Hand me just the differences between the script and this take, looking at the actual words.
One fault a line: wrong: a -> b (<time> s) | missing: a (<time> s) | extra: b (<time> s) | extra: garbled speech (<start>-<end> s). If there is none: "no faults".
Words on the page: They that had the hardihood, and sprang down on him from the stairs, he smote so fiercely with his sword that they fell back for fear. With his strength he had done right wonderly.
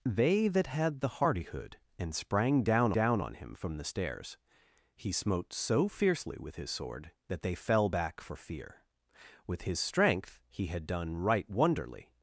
extra: down (2.9 s)